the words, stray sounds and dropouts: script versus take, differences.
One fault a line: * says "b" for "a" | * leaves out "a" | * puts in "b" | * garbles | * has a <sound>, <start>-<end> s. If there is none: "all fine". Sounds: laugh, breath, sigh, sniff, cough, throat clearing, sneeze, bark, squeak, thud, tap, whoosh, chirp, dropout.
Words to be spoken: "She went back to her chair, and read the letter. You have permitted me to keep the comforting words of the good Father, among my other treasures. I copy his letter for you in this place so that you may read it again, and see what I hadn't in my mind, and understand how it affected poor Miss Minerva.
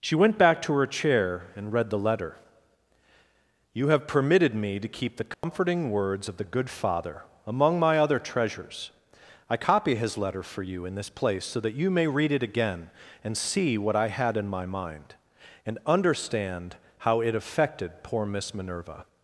* has a dropout, 5.3-5.4 s
* says "had" for "hadn't"